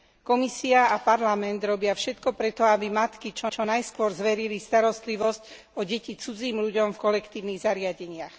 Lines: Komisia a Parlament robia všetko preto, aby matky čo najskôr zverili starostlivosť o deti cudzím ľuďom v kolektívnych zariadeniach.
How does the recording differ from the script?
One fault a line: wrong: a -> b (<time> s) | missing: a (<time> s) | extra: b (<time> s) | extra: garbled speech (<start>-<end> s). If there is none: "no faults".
extra: čo (3.5 s)